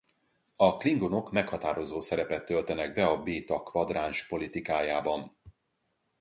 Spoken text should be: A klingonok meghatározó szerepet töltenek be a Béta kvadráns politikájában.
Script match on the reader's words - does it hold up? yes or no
yes